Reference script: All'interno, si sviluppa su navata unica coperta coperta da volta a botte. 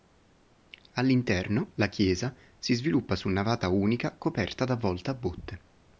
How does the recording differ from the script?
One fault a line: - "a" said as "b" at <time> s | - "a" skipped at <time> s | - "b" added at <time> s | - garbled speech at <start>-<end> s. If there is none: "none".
- "la chiesa" added at 1.8 s
- "coperta" skipped at 4.7 s